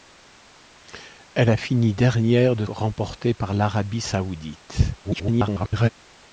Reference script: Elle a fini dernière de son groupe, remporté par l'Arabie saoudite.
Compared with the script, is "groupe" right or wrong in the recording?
wrong